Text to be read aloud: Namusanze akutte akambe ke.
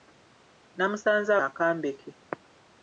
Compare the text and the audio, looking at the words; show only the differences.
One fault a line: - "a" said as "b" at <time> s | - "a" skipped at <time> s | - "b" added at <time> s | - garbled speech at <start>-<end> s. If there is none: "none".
- "akutte" skipped at 1.3 s